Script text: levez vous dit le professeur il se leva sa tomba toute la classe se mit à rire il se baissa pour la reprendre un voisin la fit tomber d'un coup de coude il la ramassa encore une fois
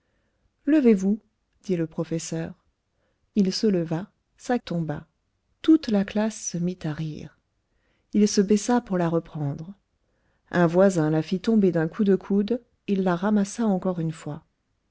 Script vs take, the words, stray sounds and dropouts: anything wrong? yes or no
no